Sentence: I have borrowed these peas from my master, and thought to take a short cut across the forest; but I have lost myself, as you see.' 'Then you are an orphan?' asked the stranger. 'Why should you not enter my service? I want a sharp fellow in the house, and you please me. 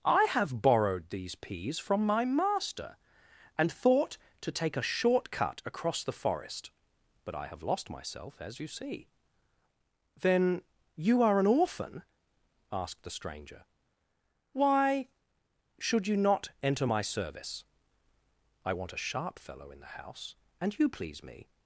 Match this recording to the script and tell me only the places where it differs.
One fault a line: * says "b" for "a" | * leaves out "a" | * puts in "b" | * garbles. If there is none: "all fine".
all fine